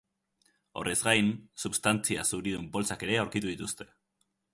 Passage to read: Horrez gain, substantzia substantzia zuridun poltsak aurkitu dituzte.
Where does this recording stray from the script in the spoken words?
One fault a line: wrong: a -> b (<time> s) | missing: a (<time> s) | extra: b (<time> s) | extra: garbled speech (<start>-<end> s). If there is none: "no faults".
missing: substantzia (2.2 s)
extra: ere (3.1 s)